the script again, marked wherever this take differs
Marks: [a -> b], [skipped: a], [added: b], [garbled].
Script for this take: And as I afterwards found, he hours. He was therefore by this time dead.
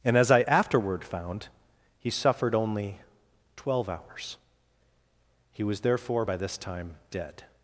And as I [afterwards -> afterward] found, he [added: suffered only twelve] hours. He was therefore by this time dead.